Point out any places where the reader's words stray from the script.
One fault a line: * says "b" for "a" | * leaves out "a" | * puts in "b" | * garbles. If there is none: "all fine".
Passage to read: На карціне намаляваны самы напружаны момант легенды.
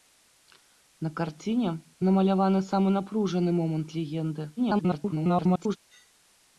* garbles